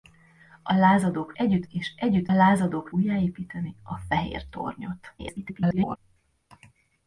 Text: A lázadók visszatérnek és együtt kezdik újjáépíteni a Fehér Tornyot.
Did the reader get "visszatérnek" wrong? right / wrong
wrong